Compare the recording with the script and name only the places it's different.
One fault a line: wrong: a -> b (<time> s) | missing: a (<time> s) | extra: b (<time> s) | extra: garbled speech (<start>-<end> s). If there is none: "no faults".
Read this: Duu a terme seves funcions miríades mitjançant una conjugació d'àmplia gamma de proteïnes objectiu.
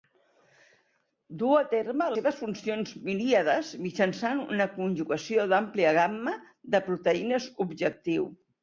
no faults